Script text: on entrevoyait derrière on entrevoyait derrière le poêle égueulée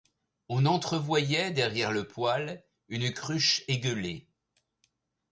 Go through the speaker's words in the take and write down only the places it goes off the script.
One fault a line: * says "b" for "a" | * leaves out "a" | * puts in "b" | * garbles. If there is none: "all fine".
* says "le poêle une cruche" for "on entrevoyait derrière le poêle"